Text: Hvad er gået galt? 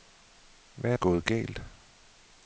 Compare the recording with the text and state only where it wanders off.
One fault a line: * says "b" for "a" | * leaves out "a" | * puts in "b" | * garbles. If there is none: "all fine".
all fine